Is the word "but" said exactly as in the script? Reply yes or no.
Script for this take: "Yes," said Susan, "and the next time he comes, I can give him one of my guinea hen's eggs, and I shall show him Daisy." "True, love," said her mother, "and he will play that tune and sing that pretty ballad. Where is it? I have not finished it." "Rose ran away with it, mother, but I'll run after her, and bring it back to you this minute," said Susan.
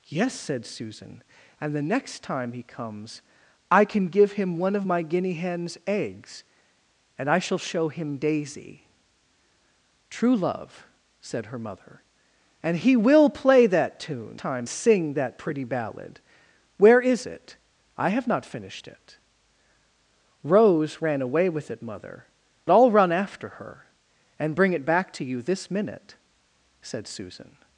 no